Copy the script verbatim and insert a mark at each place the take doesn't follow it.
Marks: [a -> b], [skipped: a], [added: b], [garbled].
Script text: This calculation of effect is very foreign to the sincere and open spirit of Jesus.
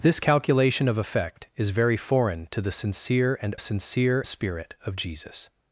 This calculation of effect is very foreign to the sincere and [open -> sincere] spirit of Jesus.